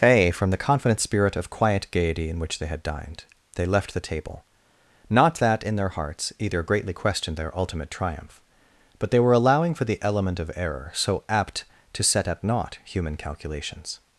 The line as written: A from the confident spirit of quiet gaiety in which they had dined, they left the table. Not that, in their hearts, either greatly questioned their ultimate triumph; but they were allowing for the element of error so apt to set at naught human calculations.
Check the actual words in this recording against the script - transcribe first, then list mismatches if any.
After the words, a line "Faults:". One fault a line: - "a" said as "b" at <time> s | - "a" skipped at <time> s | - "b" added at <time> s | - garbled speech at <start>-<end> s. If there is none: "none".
A from the confident spirit of quiet gaiety in which they had dined, they left the table. Not that, in their hearts, either greatly questioned their ultimate triumph; but they were allowing for the element of error so apt to set at naught human calculations.
Faults:
none